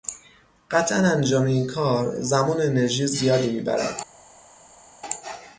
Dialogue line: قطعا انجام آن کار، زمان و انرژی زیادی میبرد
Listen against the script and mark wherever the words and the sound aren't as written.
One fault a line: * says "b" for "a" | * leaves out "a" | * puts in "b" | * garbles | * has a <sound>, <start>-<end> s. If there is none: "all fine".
* says "این" for "آن"